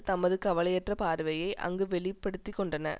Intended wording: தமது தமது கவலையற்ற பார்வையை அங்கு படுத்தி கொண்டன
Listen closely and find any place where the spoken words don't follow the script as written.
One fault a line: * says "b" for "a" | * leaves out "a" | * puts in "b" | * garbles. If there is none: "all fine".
* leaves out "தமது"
* puts in "வெளி"